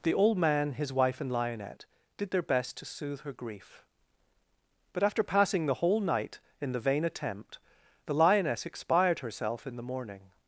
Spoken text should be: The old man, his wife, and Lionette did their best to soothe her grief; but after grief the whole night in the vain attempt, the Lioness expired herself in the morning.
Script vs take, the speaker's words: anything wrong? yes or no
yes